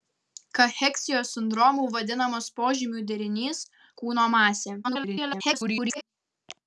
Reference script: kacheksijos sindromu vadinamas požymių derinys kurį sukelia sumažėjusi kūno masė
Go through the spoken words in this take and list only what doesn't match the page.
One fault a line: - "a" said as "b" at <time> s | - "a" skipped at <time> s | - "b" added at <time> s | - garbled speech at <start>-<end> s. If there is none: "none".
- "kurį sukelia sumažėjusi" skipped at 3.6 s
- garbled speech at 4.8-6.0 s